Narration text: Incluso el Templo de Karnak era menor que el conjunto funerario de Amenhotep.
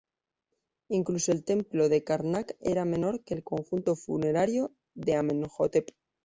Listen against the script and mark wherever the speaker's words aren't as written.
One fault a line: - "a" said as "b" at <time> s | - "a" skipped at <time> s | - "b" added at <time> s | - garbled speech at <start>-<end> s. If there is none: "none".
none